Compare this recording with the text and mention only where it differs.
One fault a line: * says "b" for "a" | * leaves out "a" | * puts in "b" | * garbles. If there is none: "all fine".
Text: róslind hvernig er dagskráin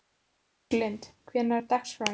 all fine